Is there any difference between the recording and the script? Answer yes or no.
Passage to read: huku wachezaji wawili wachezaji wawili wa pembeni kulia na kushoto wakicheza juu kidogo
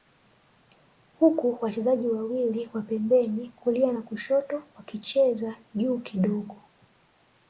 yes